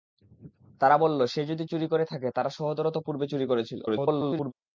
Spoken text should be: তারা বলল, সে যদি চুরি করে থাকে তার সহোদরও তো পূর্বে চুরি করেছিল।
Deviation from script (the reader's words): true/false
true